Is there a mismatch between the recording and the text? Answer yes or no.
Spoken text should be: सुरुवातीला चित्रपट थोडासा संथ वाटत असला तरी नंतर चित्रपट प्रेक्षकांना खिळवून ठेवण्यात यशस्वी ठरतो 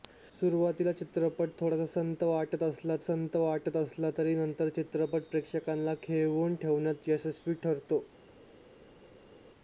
yes